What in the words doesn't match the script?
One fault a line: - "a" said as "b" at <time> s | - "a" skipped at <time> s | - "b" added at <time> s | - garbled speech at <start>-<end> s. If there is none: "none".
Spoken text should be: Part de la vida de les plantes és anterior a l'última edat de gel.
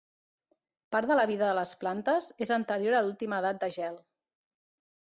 none